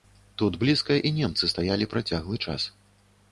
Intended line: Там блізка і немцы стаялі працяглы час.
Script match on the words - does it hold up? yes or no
no